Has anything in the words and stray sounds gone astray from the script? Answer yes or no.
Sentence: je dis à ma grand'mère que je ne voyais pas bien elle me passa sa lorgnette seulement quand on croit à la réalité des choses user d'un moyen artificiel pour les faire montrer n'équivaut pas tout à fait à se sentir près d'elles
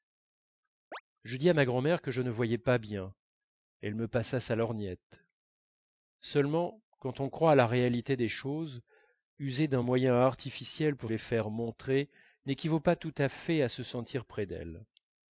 yes